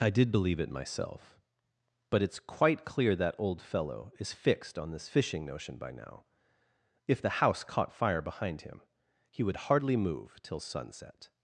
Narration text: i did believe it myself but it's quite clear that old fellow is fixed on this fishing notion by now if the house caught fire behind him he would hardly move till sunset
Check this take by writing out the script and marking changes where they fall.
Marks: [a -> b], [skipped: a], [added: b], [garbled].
i did believe it myself but it's quite clear that old fellow is fixed on this fishing notion by now if the house caught fire behind him he would hardly move till sunset